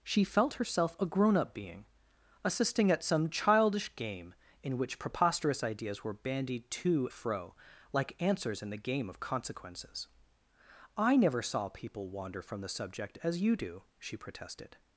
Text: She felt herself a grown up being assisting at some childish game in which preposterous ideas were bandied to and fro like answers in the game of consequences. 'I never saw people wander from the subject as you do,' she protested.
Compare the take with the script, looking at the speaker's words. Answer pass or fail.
fail